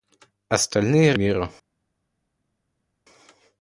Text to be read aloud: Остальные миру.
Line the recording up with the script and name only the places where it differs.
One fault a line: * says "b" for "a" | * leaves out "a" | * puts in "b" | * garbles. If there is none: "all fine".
all fine